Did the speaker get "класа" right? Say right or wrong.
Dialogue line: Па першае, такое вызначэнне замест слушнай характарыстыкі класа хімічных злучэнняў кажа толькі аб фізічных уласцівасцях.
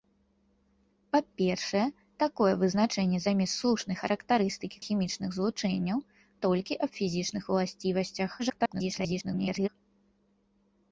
wrong